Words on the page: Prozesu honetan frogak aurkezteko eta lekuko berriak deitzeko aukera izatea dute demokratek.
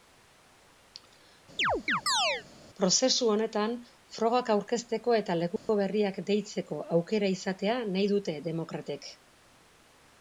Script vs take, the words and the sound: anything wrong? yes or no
yes